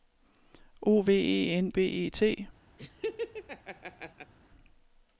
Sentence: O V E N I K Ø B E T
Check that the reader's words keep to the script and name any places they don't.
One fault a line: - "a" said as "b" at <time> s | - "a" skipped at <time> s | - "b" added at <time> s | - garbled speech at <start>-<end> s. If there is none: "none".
- "I K Ø" skipped at 1.7 s